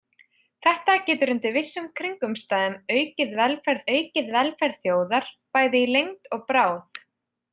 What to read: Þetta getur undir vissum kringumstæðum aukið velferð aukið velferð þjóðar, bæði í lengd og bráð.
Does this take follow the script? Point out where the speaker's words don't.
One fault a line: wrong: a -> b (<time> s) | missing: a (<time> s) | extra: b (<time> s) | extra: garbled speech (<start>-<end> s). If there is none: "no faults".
no faults